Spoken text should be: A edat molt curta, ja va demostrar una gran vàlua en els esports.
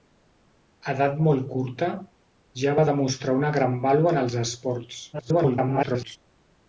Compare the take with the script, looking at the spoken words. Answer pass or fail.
fail